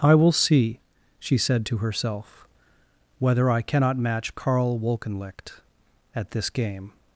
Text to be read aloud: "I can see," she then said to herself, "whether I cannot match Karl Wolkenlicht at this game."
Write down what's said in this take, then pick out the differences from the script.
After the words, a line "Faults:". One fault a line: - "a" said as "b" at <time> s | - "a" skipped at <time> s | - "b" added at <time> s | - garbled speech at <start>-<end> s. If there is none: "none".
"I will see," she said to herself, "whether I cannot match Karl Wolkenlicht at this game."
Faults:
- "can" said as "will" at 0.1 s
- "then" skipped at 1.4 s